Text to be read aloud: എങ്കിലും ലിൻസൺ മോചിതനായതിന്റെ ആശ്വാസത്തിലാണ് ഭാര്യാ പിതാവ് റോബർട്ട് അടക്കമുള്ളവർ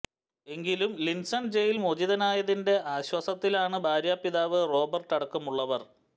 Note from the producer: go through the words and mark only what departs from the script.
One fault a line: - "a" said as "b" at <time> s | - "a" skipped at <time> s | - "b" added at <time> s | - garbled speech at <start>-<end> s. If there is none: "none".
- "ജയിൽ" added at 1.6 s